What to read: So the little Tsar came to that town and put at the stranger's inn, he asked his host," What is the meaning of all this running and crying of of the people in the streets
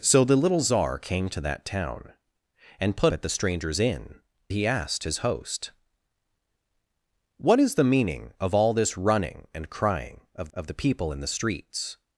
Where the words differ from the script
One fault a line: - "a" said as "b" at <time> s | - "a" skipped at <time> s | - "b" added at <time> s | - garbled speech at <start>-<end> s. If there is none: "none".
none